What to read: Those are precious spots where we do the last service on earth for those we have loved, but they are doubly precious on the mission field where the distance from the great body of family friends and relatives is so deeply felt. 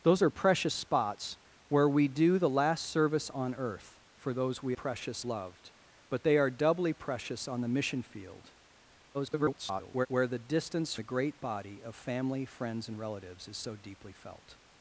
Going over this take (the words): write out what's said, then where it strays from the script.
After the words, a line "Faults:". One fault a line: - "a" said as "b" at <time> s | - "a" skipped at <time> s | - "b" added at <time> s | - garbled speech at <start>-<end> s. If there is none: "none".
Those are precious spots where we do the last service on earth for those we precious loved, but they are doubly precious on the mission field [garbled] where the distance the great body of family friends and relatives is so deeply felt.
Faults:
- "have" said as "precious" at 4.7 s
- garbled speech at 9.1-10.1 s
- "from" skipped at 11.0 s